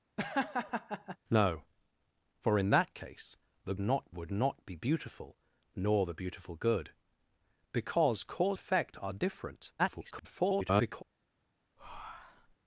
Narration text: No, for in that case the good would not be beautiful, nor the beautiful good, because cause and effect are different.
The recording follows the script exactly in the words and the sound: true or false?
false